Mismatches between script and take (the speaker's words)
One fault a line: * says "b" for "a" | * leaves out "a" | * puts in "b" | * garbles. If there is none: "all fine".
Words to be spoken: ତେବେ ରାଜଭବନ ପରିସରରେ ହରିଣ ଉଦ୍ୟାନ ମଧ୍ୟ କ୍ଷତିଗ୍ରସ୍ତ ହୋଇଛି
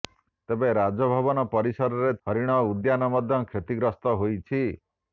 all fine